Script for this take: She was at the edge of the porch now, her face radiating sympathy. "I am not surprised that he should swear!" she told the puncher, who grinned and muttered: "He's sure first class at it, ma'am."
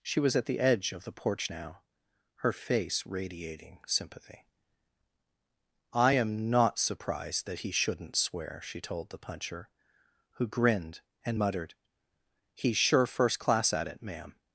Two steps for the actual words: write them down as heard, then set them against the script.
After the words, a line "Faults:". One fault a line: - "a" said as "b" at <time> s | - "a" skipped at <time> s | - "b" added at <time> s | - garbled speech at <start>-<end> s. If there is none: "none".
She was at the edge of the porch now, her face radiating sympathy. "I am not surprised that he shouldn't swear!" she told the puncher, who grinned and muttered: "He's sure first class at it, ma'am."
Faults:
- "should" said as "shouldn't" at 7.7 s